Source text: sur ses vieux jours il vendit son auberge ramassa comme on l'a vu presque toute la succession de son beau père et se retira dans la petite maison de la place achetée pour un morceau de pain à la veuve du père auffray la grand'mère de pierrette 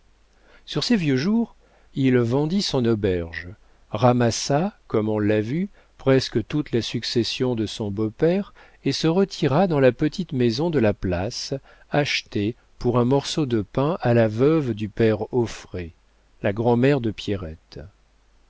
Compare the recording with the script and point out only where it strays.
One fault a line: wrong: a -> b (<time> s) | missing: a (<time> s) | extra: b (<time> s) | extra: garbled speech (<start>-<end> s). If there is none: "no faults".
no faults